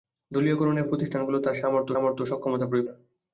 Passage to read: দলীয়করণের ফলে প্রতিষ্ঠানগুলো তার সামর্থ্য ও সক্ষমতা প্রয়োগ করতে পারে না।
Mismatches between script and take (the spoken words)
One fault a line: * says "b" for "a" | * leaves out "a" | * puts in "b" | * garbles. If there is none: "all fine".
* leaves out "ফলে"
* puts in "সামর্থ্য"
* leaves out "করতে পারে"